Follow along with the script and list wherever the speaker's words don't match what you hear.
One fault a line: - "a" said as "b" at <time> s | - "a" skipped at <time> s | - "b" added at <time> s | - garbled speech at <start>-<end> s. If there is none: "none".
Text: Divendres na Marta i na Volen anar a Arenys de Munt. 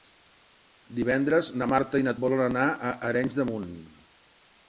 none